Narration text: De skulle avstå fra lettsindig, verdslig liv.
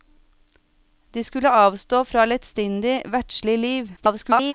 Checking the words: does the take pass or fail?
fail